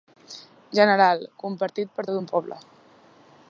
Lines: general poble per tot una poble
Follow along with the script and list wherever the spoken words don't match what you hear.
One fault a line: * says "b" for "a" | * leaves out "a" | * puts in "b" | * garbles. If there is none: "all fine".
* says "compartit" for "poble"
* says "un" for "una"